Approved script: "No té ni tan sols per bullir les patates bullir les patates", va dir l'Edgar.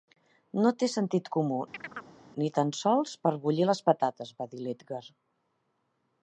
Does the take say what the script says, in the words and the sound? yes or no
no